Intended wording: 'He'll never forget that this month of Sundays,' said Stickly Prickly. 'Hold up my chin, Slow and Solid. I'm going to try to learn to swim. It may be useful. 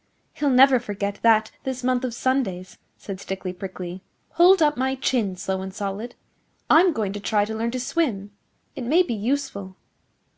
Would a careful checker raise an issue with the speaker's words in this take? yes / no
no